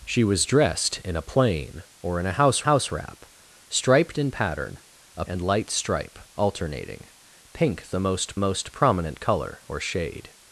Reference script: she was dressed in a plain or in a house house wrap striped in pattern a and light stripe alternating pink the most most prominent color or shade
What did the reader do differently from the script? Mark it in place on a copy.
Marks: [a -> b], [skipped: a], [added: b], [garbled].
she was dressed in a plain or in a house house wrap striped in pattern a and light stripe alternating pink the most most prominent color or shade